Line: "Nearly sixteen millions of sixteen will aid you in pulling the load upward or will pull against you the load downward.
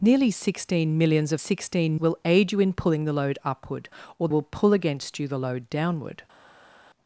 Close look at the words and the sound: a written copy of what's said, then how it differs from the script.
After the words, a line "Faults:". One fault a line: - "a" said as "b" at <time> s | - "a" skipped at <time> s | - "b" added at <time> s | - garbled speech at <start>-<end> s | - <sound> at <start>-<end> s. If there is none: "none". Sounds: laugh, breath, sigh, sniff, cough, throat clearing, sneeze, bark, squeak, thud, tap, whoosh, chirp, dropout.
"Nearly sixteen millions of sixteen will aid you in pulling the load upward or will pull against you the load downward.
Faults:
none